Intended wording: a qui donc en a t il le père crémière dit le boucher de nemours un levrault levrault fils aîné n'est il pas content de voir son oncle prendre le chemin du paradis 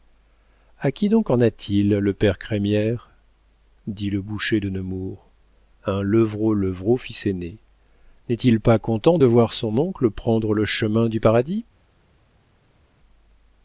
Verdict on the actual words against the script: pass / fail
pass